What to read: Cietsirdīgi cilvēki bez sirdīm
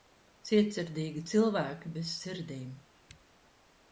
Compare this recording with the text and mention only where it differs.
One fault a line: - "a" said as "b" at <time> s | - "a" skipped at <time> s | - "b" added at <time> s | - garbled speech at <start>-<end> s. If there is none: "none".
none